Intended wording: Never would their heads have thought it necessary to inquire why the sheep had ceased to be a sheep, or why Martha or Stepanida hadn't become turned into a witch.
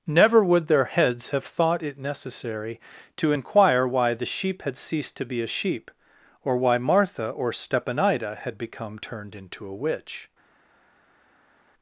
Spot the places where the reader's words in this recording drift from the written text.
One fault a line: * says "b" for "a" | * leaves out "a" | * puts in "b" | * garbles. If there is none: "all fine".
* says "had" for "hadn't"